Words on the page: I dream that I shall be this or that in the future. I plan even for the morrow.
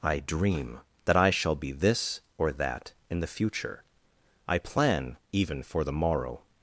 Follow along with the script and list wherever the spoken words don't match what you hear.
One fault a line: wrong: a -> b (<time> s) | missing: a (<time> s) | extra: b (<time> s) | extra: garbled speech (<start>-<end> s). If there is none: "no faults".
no faults